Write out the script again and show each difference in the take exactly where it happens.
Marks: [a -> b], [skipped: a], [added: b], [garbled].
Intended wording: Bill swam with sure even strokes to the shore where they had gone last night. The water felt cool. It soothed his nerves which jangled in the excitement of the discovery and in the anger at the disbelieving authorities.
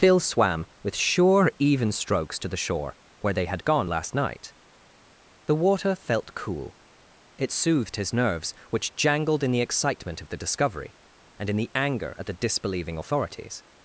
[Bill -> Phil] swam with sure even strokes to the shore where they had gone last night. The water felt cool. It soothed his nerves which jangled in the excitement of the discovery and in the anger at the disbelieving authorities.